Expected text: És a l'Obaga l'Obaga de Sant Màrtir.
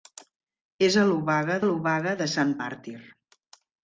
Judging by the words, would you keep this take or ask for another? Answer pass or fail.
pass